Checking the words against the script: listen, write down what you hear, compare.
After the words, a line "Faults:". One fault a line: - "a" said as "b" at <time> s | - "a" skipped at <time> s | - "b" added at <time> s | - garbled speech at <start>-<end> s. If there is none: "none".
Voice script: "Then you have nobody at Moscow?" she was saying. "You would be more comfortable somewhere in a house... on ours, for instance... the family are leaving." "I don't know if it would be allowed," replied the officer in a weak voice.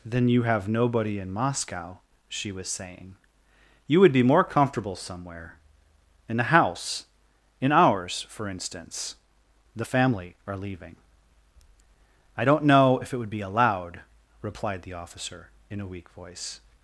"Then you have nobody in Moscow?" she was saying. "You would be more comfortable somewhere in a house... in ours, for instance... the family are leaving." "I don't know if it would be allowed," replied the officer in a weak voice.
Faults:
- "at" said as "in" at 1.2 s
- "on" said as "in" at 7.6 s